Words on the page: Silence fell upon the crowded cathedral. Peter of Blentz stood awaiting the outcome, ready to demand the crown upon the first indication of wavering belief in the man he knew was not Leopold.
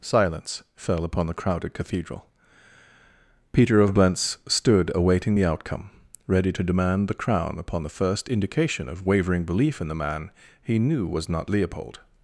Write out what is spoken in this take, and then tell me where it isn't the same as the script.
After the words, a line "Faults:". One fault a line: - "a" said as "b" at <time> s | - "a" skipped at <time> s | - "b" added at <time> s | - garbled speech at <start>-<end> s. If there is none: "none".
Silence fell upon the crowded cathedral. Peter of Blentz stood awaiting the outcome, ready to demand the crown upon the first indication of wavering belief in the man he knew was not Leopold.
Faults:
none